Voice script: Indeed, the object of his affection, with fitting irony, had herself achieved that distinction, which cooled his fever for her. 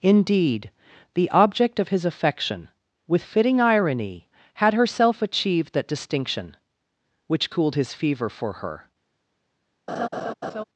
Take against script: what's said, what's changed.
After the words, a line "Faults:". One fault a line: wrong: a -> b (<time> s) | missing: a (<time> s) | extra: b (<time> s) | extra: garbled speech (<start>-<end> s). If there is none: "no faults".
Indeed, the object of his affection, with fitting irony, had herself achieved that distinction, which cooled his fever for her.
Faults:
no faults